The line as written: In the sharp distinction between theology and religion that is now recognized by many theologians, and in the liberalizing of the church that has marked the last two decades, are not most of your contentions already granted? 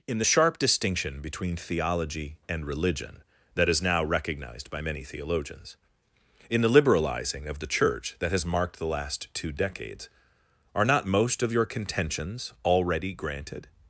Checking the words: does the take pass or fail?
fail